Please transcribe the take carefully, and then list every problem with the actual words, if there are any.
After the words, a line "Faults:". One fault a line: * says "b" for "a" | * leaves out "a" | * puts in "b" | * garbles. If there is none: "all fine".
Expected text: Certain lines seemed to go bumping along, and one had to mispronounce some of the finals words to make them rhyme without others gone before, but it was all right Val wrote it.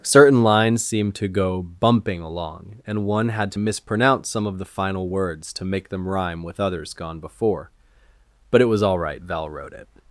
Certain lines seemed to go bumping along, and one had to mispronounce some of the final words to make them rhyme with others gone before, but it was all right Val wrote it.
Faults:
* says "final" for "finals"
* says "with" for "without"